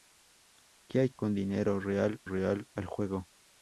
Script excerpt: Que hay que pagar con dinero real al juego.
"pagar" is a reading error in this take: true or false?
true